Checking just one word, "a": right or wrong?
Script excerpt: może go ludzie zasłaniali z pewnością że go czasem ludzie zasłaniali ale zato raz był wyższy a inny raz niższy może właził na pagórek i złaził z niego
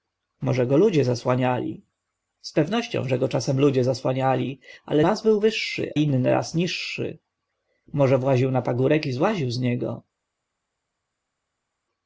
wrong